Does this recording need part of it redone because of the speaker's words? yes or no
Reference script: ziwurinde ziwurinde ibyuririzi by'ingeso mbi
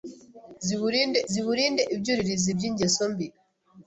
no